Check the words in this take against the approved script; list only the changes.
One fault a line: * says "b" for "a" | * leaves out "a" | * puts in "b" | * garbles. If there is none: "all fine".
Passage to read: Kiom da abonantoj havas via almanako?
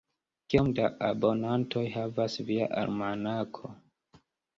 all fine